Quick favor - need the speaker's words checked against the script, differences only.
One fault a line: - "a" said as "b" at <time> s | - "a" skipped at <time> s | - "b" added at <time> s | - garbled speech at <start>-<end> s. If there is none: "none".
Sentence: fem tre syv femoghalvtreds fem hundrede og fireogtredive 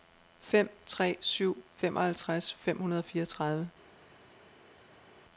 none